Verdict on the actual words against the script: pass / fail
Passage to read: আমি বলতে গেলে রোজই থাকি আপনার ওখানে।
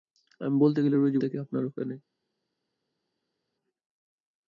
pass